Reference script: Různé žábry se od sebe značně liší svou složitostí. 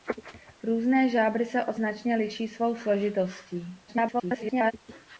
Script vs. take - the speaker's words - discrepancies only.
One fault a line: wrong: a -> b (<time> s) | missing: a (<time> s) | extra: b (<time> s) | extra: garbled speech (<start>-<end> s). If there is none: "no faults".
missing: sebe (1.8 s)
extra: garbled speech (3.9-4.7 s)